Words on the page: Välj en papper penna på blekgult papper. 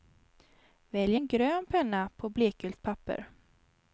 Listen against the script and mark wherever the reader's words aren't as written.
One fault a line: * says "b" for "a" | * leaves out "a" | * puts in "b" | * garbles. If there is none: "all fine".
* says "grön" for "papper"